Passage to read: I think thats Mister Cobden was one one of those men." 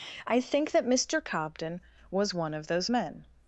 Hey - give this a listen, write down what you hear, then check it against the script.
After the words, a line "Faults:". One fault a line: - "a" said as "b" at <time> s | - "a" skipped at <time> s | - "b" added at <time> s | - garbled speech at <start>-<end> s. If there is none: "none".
I think that Mister Cobden was one of those men."
Faults:
- "thats" said as "that" at 0.7 s
- "one" skipped at 2.5 s